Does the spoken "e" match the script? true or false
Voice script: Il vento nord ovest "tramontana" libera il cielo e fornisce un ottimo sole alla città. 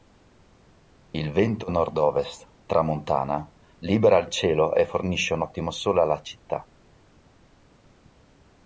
true